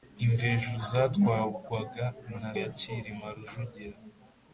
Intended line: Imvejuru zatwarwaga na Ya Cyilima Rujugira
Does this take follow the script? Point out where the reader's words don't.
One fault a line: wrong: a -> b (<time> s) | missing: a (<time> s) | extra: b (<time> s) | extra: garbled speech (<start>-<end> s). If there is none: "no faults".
no faults